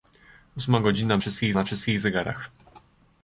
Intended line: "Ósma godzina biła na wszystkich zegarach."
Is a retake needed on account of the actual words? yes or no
yes